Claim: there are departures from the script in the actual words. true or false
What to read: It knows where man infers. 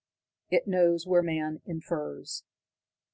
false